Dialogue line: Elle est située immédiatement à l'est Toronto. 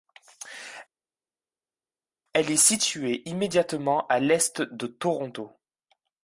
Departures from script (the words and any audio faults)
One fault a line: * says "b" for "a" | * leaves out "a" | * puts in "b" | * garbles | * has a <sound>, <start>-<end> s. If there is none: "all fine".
* puts in "de"